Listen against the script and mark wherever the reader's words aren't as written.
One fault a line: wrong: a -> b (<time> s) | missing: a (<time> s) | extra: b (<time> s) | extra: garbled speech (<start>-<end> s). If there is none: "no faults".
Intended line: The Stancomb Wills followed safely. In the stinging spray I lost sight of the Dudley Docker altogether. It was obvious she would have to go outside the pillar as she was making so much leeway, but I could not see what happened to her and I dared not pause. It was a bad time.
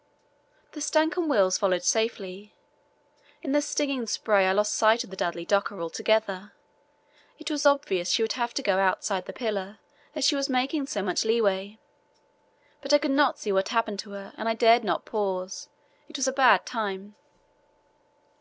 no faults